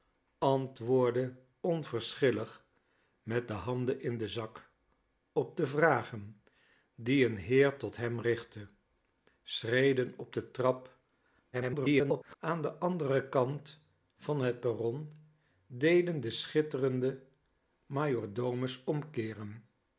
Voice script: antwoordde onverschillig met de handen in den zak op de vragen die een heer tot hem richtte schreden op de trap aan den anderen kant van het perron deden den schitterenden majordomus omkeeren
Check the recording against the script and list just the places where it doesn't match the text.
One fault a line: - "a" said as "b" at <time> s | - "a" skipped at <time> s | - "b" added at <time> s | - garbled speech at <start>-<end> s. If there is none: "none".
- garbled speech at 11.5-12.4 s